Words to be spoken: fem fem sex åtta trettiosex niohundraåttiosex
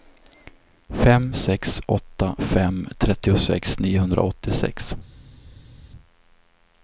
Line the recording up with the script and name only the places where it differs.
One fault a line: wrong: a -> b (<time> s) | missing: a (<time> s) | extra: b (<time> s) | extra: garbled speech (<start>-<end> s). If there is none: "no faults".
missing: fem (1.4 s)
extra: fem (2.4 s)